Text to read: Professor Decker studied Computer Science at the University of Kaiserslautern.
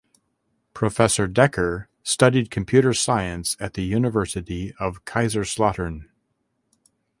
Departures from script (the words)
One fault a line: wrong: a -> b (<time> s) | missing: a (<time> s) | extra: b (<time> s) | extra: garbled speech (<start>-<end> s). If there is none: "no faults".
no faults